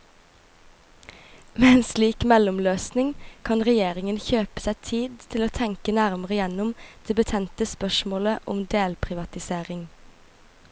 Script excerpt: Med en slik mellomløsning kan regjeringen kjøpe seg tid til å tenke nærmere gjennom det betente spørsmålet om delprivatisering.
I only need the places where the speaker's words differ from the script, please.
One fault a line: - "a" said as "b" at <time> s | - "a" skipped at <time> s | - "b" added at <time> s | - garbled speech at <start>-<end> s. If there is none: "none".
none